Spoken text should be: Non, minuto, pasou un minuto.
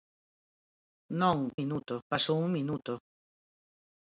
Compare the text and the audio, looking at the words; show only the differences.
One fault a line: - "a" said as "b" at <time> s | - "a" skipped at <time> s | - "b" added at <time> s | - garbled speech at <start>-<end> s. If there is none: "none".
none